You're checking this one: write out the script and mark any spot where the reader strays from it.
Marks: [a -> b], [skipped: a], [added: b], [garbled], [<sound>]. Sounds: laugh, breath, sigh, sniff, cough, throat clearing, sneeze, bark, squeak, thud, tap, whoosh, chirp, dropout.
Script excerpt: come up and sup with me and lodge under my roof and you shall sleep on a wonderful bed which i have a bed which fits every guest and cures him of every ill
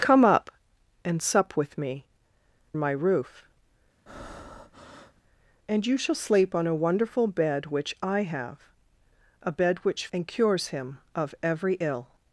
come up and sup with me [skipped: and lodge under] my roof [breath] and you shall sleep on a wonderful bed which i have a bed which [skipped: fits every guest] and cures him of every ill